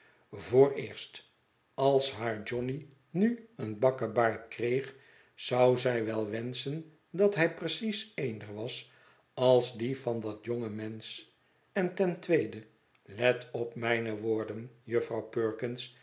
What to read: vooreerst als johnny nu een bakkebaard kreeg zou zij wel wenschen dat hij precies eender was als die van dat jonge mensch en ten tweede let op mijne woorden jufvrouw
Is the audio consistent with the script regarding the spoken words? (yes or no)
no